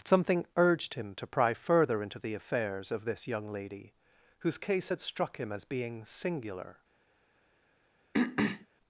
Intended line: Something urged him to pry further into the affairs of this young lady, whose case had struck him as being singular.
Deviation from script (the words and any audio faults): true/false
true